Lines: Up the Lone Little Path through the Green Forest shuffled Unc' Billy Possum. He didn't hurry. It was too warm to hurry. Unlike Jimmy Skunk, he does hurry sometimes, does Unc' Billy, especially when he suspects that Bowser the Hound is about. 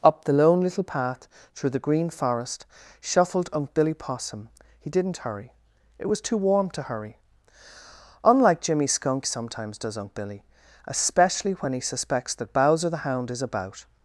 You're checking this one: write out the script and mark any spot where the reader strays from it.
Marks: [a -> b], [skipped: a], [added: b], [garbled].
Up the Lone Little Path through the Green Forest shuffled Unc' Billy Possum. He didn't hurry. It was too warm to hurry. Unlike Jimmy Skunk, [skipped: he does hurry] sometimes, does Unc' Billy, especially when he suspects that Bowser the Hound is about.